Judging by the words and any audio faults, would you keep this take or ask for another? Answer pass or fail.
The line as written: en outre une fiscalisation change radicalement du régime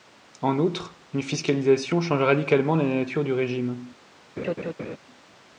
fail